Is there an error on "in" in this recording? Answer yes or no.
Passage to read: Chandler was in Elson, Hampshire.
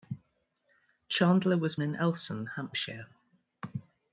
no